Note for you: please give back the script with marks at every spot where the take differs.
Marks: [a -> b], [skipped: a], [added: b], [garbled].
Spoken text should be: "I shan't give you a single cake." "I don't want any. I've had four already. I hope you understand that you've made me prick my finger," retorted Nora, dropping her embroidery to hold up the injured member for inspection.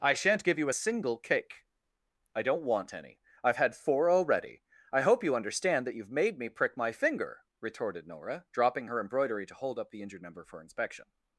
"I shan't give you a single cake." "I don't want any. I've had four already. I hope you understand that you've made me prick my finger," retorted Nora, dropping her embroidery to hold up the injured member for inspection.